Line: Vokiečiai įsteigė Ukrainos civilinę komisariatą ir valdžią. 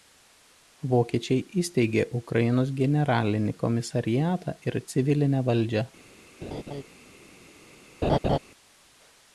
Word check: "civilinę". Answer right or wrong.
wrong